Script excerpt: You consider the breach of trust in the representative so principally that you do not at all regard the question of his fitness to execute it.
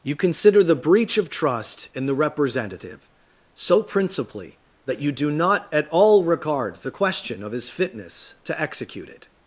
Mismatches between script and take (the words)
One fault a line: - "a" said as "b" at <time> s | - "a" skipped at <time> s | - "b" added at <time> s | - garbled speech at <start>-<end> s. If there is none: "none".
none